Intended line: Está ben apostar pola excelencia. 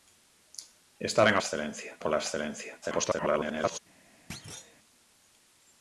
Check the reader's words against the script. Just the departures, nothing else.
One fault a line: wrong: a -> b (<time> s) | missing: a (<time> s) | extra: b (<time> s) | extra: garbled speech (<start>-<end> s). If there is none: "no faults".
wrong: apostar -> excelencia (1.4 s)
extra: garbled speech (2.8-3.8 s)